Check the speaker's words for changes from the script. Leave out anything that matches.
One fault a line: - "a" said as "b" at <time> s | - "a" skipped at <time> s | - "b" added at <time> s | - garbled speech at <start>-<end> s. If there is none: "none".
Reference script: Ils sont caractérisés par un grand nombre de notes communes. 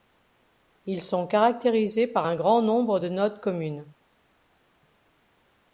none